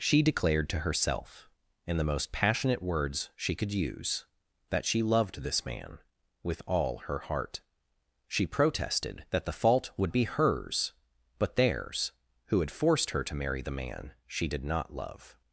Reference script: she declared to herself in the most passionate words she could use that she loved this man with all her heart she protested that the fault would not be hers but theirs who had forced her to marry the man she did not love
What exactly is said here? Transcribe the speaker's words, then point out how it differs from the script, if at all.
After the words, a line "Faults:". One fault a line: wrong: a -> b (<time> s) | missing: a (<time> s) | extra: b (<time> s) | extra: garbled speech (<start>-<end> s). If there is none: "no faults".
she declared to herself in the most passionate words she could use that she loved this man with all her heart she protested that the fault would be hers but theirs who had forced her to marry the man she did not love
Faults:
missing: not (10.1 s)